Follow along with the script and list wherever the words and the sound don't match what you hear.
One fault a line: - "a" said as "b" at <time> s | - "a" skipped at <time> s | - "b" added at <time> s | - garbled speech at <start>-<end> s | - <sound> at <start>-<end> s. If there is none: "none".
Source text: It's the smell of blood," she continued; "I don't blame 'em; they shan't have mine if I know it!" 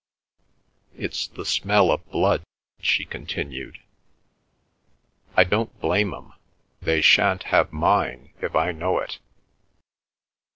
none